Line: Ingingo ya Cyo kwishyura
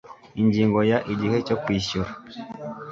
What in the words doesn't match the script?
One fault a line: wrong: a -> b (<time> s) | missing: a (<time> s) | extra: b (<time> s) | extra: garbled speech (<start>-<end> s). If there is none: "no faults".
extra: Igihe (1.1 s)